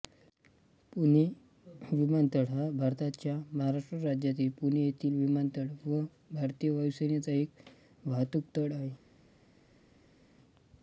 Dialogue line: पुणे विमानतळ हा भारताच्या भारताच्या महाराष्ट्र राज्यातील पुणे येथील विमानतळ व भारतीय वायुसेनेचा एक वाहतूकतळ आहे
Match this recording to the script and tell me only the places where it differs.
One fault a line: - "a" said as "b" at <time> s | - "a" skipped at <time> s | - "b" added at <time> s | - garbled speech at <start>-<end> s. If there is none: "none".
- "भारताच्या" skipped at 3.4 s